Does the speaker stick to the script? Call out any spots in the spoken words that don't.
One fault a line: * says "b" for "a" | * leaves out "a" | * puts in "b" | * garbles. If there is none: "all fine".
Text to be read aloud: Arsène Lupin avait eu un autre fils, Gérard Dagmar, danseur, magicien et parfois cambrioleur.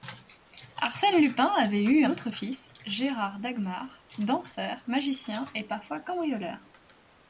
* leaves out "un"